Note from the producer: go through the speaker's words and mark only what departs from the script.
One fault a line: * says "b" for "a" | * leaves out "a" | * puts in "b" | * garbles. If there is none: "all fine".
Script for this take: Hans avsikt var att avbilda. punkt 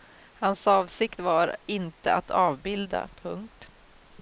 * puts in "inte"